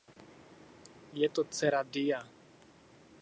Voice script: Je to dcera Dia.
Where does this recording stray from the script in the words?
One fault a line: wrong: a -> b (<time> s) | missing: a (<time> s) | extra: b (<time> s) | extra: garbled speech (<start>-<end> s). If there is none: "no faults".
no faults